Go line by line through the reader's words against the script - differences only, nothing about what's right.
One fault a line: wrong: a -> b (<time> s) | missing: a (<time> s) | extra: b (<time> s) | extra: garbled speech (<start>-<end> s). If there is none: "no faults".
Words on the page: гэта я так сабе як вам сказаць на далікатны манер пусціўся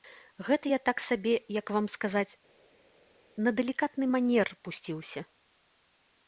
no faults